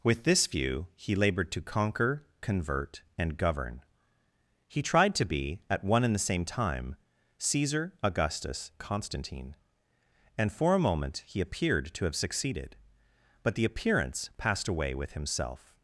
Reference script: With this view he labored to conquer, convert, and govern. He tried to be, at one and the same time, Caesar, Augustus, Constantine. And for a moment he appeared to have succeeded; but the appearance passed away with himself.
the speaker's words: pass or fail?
pass